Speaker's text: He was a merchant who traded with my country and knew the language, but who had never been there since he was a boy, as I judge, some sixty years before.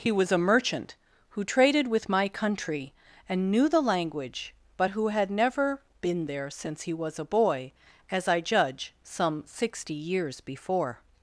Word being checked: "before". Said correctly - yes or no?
yes